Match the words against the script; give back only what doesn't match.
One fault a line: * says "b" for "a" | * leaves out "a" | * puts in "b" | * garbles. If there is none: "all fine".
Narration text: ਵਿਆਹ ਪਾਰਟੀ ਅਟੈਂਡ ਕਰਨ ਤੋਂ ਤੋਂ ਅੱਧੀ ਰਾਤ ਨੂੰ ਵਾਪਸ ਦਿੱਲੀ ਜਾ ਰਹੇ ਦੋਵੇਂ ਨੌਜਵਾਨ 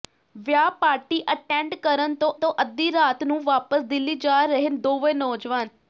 all fine